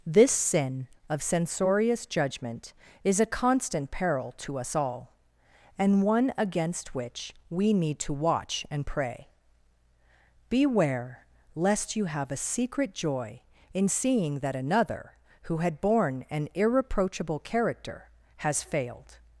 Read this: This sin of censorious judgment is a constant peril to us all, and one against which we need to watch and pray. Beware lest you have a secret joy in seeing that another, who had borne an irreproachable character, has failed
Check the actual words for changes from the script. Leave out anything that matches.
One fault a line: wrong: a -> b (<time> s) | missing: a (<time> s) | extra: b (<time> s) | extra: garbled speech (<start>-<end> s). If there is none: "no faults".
no faults